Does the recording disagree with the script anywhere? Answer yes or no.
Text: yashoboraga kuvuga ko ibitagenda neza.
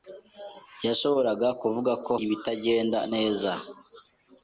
no